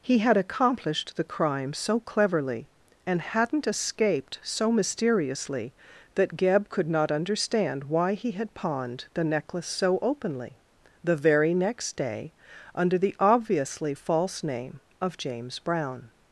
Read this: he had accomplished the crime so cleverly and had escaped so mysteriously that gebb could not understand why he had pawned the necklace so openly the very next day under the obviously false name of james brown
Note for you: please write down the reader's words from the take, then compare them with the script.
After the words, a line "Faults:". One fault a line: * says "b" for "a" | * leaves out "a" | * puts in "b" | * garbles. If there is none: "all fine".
he had accomplished the crime so cleverly and hadn't escaped so mysteriously that gebb could not understand why he had pawned the necklace so openly the very next day under the obviously false name of james brown
Faults:
* says "hadn't" for "had"